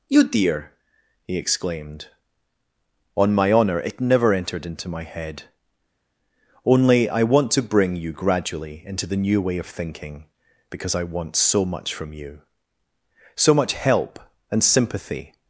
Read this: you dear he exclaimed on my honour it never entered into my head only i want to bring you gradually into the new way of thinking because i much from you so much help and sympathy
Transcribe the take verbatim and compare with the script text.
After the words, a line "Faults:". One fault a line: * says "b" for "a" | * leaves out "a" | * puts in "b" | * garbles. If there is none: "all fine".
you dear he exclaimed on my honour it never entered into my head only i want to bring you gradually into the new way of thinking because i want so much from you so much help and sympathy
Faults:
* puts in "want so"